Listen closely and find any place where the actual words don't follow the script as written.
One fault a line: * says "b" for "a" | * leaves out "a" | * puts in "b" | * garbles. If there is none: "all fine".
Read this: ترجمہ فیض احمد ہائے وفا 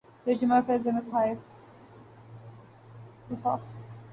all fine